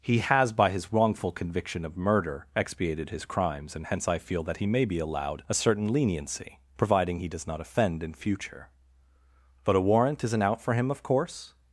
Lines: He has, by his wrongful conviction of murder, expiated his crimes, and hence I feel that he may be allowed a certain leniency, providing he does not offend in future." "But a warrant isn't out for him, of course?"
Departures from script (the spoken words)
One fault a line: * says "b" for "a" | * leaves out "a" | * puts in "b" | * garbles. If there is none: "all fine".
all fine